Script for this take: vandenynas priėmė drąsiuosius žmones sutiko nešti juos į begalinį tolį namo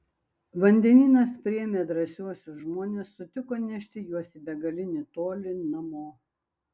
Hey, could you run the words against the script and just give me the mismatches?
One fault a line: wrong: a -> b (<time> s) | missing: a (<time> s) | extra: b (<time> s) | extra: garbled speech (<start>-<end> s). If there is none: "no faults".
no faults